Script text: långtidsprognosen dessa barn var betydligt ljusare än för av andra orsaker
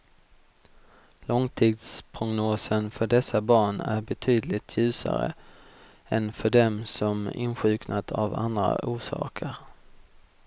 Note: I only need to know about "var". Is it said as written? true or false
false